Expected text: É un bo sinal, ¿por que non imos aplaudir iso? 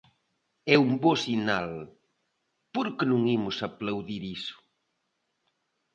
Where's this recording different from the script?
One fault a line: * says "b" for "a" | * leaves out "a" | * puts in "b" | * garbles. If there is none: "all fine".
all fine